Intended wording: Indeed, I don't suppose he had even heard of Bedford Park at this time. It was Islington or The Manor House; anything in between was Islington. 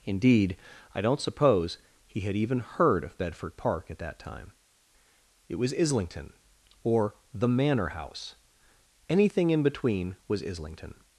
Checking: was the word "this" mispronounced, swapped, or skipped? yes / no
yes